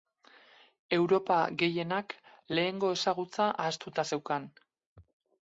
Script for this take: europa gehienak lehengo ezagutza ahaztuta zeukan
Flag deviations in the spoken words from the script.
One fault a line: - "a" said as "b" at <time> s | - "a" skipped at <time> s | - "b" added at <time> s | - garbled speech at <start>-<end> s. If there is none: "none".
none